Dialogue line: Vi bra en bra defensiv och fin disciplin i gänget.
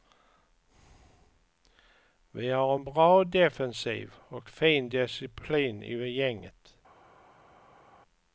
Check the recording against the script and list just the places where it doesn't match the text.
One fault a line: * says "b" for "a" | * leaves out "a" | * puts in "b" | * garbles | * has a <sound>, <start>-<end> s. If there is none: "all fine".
* says "har" for "bra"